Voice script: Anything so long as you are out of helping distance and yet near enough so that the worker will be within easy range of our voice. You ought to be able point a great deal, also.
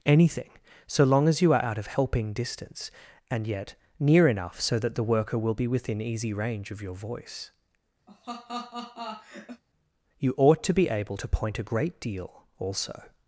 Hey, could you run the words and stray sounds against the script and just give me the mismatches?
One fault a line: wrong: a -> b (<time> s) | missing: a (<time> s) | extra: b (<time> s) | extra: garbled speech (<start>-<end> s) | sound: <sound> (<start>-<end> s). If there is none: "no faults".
wrong: our -> your (6.8 s)
sound: laugh (8.1-9.6 s)
extra: to (11.2 s)